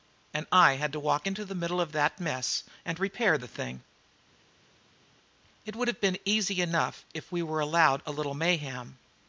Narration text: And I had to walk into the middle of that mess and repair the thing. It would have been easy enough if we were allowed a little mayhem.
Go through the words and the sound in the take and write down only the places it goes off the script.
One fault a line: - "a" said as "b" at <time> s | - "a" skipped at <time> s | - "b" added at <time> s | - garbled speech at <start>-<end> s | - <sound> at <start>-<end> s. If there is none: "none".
none